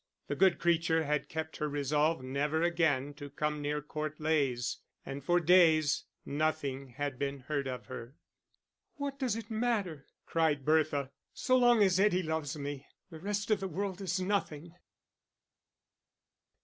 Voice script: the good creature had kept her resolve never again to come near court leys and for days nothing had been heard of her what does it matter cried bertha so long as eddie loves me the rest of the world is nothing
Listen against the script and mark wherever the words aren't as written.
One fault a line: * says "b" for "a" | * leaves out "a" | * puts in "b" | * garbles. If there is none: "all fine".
all fine